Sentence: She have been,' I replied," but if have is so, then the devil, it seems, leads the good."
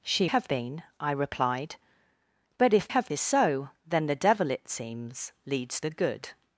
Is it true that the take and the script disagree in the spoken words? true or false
false